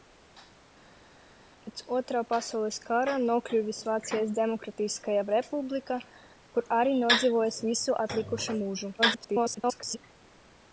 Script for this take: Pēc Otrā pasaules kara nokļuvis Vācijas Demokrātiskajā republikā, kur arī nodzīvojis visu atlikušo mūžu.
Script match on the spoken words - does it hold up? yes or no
no